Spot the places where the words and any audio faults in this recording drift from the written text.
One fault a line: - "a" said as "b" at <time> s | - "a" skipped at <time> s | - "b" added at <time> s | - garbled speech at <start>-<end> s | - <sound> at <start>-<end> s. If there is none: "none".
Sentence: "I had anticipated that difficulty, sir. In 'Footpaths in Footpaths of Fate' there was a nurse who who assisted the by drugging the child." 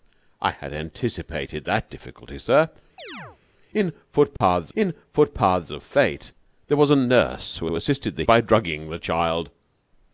- chirp at 3.0-3.4 s
- dropout at 4.4-4.4 s